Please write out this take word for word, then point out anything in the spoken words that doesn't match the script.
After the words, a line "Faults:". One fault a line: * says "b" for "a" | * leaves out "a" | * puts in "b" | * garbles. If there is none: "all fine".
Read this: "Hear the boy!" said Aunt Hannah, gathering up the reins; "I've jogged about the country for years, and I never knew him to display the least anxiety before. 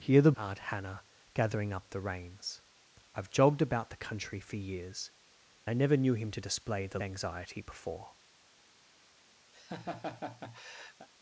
"Hear the Aunt Hannah, gathering up the reins; "I've jogged about the country for years, I never knew him to display the anxiety before.
Faults:
* leaves out "boy said"
* leaves out "and"
* leaves out "least"